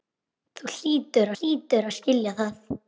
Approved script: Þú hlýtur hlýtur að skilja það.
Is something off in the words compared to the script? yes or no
no